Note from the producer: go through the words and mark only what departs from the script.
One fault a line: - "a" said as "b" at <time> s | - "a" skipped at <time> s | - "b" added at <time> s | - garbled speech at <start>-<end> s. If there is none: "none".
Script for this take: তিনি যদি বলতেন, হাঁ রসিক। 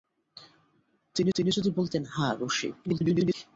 - "তিনি" added at 1.3 s
- garbled speech at 2.9-3.3 s